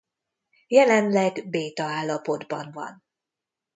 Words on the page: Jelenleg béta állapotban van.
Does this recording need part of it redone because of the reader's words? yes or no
no